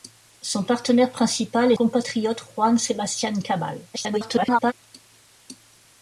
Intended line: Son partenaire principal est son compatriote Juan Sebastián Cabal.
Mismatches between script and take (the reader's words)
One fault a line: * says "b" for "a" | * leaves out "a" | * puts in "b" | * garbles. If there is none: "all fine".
* leaves out "son"
* garbles